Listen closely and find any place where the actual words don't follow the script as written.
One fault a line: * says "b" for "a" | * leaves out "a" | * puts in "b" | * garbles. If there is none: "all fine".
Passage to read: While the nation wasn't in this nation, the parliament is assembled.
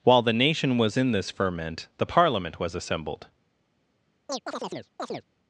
* says "was" for "wasn't"
* says "ferment" for "nation"
* says "was" for "is"